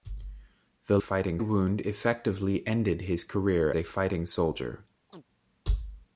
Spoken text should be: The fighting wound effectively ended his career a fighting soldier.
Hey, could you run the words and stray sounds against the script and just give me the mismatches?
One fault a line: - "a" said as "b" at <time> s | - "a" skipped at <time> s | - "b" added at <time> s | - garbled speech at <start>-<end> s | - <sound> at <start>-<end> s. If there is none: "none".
- chirp at 5.1-5.2 s